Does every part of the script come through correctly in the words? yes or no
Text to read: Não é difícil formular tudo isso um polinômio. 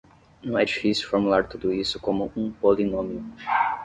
no